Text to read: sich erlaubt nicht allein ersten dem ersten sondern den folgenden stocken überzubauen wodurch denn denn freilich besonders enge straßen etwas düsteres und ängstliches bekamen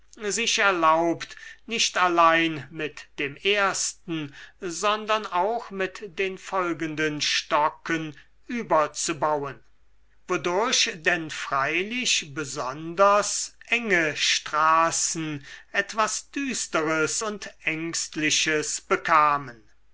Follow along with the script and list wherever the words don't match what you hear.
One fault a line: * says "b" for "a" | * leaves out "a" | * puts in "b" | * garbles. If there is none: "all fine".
* says "mit" for "ersten"
* puts in "auch mit"
* leaves out "denn"